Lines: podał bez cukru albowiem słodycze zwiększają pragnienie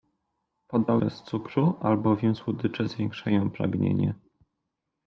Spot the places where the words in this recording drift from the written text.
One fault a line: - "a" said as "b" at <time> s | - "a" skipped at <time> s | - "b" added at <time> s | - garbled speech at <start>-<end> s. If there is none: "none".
none